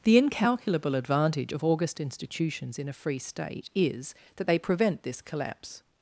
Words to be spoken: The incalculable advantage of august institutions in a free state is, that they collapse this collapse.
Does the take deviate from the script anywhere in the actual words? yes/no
yes